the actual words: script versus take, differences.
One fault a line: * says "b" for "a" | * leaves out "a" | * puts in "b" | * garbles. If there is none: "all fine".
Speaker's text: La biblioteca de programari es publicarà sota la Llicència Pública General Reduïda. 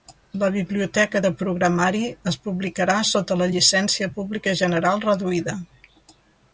all fine